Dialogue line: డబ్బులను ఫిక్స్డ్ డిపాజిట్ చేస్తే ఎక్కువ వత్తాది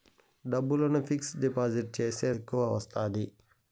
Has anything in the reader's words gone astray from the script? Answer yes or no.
no